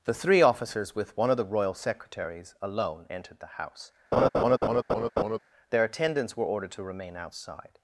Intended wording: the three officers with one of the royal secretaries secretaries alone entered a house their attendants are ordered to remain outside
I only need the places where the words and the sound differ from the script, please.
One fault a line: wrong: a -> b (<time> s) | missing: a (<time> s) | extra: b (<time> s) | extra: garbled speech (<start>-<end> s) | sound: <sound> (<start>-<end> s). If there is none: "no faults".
missing: secretaries (2.5 s)
wrong: a -> the (3.4 s)
sound: laugh (4.1-5.4 s)
wrong: are -> were (6.3 s)